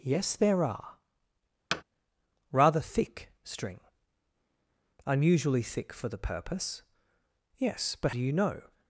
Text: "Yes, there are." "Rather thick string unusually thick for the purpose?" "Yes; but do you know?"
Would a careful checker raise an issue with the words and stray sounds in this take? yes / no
yes